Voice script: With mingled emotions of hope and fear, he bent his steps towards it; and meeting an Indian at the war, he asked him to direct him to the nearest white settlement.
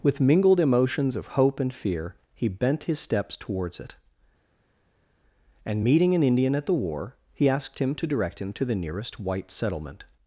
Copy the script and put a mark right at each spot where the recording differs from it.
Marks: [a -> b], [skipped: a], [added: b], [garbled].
With mingled emotions of hope and fear, he bent his steps towards it; and meeting an Indian at the war, he asked him to direct him to the nearest white settlement.